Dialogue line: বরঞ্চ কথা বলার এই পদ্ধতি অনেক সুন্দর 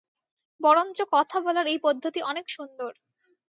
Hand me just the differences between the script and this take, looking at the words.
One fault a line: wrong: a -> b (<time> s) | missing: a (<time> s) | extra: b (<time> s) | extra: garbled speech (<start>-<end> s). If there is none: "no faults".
no faults